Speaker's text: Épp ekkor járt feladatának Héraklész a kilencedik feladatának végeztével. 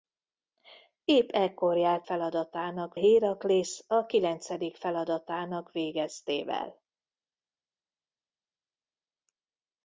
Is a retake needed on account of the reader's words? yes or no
no